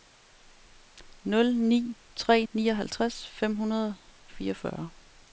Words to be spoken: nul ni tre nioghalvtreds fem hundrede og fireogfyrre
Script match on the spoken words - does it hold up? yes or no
yes